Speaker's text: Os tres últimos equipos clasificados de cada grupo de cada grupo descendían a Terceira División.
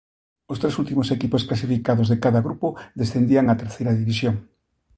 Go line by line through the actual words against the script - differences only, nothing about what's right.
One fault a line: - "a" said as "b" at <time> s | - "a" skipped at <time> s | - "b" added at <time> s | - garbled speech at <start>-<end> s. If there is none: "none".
- "de cada grupo" skipped at 2.7 s